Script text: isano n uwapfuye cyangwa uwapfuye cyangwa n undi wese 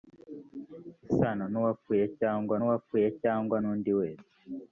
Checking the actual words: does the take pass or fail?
pass